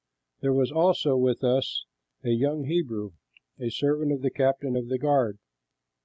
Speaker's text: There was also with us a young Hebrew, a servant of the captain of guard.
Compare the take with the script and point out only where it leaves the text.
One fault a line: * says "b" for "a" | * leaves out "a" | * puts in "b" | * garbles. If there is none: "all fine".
* puts in "the"